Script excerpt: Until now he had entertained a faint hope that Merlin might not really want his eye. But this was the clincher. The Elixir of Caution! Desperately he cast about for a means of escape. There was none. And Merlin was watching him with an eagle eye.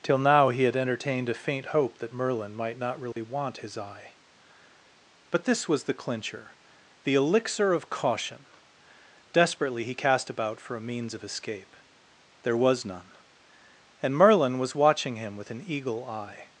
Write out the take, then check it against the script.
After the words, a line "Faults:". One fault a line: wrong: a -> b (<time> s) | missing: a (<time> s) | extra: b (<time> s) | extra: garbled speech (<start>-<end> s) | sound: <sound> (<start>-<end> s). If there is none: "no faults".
Till now he had entertained a faint hope that Merlin might not really want his eye. But this was the clincher. The Elixir of Caution! Desperately he cast about for a means of escape. There was none. And Merlin was watching him with an eagle eye.
Faults:
wrong: Until -> Till (0.0 s)
sound: dropout (3.1-3.2 s)